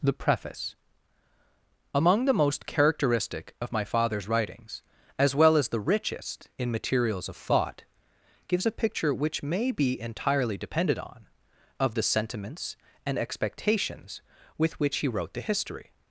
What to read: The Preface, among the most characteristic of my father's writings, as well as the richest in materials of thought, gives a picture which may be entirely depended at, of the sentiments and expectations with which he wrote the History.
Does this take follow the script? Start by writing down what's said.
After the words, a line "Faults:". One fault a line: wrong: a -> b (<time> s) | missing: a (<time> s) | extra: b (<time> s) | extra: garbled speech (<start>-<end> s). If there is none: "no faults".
The Preface, among the most characteristic of my father's writings, as well as the richest in materials of thought, gives a picture which may be entirely depended on, of the sentiments and expectations with which he wrote the History.
Faults:
wrong: at -> on (11.0 s)